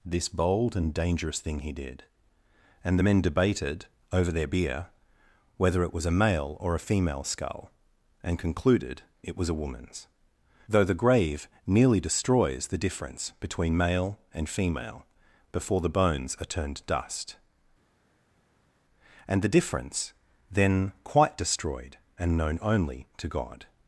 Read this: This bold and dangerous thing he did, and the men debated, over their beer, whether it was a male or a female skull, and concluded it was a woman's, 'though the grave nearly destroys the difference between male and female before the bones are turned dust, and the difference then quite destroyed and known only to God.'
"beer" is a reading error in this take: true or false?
false